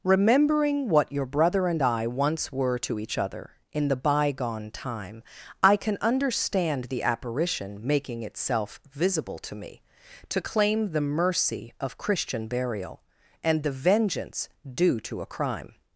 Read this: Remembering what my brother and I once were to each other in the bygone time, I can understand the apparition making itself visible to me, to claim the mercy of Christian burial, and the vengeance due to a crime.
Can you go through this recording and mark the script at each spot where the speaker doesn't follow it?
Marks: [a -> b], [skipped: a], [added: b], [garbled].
Remembering what [my -> your] brother and I once were to each other in the bygone time, I can understand the apparition making itself visible to me, to claim the mercy of Christian burial, and the vengeance due to a crime.